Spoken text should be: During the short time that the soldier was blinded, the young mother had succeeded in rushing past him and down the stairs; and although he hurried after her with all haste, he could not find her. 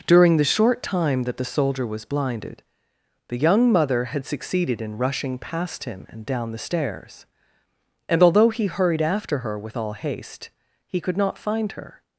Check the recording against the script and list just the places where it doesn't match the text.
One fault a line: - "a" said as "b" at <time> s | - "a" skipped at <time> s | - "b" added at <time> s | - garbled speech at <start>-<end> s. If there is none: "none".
none